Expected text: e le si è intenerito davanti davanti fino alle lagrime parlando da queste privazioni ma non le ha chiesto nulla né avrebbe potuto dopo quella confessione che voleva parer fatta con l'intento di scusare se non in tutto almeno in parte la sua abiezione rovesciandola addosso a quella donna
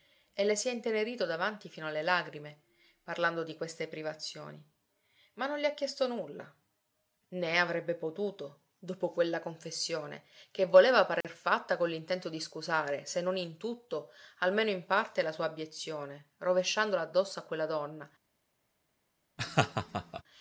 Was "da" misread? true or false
true